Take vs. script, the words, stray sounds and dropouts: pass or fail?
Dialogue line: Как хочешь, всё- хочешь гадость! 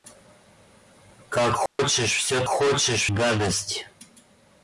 fail